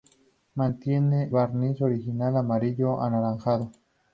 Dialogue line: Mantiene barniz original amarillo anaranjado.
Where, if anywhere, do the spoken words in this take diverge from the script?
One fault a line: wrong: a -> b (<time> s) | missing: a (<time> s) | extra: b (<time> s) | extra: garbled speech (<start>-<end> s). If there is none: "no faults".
no faults